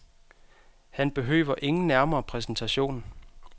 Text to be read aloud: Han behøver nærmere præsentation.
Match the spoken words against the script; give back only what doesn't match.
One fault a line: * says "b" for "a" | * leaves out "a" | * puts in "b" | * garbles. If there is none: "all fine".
* puts in "ingen"